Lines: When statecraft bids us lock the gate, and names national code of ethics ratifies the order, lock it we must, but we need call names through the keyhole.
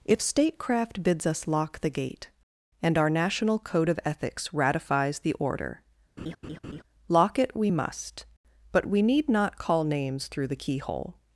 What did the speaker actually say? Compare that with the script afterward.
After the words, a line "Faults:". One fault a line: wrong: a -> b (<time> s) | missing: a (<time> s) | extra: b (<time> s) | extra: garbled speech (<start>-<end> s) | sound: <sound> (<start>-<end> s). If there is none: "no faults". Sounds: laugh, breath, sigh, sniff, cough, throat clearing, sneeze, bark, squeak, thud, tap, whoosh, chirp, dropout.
If statecraft bids us lock the gate, and our national code of ethics ratifies the order, lock it we must, but we need not call names through the keyhole.
Faults:
wrong: When -> If (0.0 s)
wrong: names -> our (3.0 s)
sound: laugh (6.2-6.8 s)
extra: not (9.3 s)